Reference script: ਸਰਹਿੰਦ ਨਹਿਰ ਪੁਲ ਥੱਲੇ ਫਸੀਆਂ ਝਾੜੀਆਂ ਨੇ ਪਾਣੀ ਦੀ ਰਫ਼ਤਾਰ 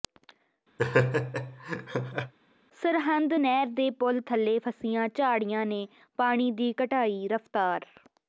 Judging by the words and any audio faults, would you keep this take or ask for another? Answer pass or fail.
fail